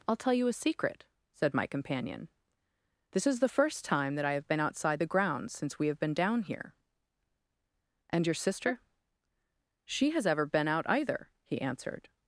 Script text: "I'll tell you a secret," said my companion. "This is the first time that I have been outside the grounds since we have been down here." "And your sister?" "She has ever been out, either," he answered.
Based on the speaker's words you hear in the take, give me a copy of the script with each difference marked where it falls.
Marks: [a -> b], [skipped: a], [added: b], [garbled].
"I'll tell you a secret," said my companion. "This is the first time that I have been outside the grounds since we have been down here." "And your sister?" "She has ever been out, either," he answered.